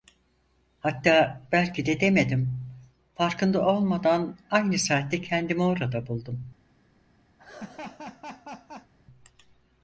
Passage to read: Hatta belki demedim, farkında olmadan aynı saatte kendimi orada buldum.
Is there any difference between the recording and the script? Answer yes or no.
yes